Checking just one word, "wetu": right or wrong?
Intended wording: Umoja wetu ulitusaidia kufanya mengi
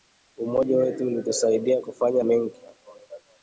right